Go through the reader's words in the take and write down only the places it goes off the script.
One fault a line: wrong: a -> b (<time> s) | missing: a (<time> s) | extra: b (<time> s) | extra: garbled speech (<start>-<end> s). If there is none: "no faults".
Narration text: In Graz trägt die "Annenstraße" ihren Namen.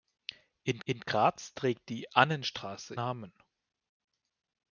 extra: in (0.8 s)
missing: ihren (2.9 s)